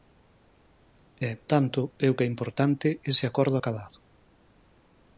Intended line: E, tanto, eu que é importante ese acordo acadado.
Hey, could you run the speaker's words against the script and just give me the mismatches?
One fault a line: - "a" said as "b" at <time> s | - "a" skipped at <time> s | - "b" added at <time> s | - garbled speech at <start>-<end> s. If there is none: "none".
none